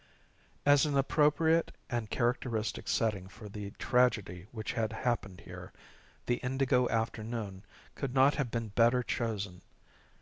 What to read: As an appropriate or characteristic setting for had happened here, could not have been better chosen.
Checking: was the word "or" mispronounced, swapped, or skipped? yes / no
yes